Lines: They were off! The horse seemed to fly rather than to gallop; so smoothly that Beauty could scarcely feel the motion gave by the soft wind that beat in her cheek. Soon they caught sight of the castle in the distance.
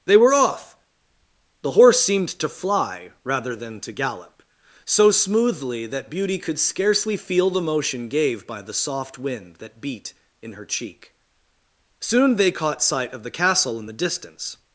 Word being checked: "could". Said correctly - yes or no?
yes